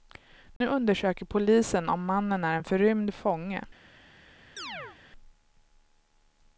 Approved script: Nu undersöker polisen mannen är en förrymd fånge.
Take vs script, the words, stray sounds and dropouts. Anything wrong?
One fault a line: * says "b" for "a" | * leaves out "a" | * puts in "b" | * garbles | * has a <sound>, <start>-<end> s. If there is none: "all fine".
* has a dropout, 0.6-0.6 s
* puts in "om"
* has a chirp, 4.6-5.0 s